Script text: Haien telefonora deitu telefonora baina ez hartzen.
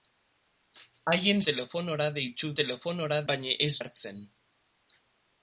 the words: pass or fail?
pass